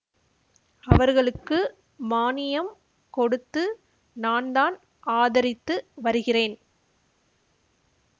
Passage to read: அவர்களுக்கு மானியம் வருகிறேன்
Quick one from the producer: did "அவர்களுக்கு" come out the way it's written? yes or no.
yes